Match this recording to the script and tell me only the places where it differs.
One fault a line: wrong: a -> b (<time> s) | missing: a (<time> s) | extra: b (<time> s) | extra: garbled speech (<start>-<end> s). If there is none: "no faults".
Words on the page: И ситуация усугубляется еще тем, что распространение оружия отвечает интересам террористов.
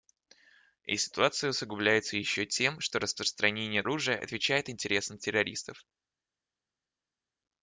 no faults